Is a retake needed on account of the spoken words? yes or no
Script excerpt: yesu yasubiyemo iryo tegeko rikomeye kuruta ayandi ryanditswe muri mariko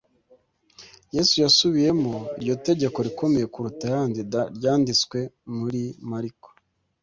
no